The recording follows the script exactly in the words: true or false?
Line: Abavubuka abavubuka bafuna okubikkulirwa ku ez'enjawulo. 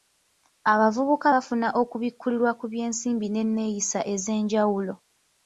false